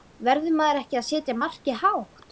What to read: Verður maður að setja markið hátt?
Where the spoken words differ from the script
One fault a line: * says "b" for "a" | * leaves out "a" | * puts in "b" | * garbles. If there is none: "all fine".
* puts in "ekki"